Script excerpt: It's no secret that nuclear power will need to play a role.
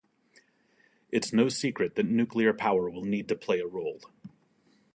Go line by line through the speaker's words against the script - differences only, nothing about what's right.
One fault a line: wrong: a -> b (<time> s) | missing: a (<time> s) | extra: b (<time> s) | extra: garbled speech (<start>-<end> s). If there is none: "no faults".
no faults